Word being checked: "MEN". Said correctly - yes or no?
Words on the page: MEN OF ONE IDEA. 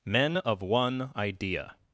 yes